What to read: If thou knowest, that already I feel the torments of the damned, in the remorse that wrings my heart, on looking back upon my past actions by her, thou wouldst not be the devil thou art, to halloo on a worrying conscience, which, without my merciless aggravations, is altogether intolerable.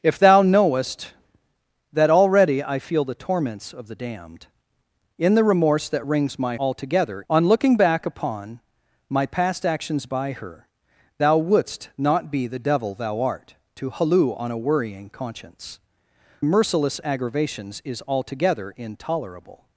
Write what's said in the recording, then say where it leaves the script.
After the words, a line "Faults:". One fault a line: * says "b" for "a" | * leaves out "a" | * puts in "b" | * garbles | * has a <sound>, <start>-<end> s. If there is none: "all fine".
If thou knowest, that already I feel the torments of the damned, in the remorse that wrings my altogether, on looking back upon my past actions by her, thou wouldst not be the devil thou art, to halloo on a worrying conscience, merciless aggravations, is altogether intolerable.
Faults:
* says "altogether" for "heart"
* leaves out "which without my"